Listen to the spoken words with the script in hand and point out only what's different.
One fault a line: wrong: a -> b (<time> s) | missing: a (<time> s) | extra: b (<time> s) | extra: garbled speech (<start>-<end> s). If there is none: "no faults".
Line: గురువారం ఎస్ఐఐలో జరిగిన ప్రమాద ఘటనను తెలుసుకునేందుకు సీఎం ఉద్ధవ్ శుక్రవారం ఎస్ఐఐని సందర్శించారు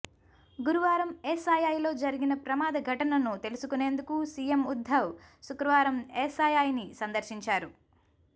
no faults